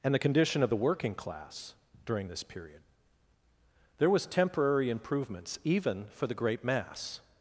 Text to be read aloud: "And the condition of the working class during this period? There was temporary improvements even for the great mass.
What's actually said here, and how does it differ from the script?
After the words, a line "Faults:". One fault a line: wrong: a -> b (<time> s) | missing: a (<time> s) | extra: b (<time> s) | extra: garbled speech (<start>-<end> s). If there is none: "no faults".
"And the condition of the working class during this period? There was temporary improvements even for the great mass.
Faults:
no faults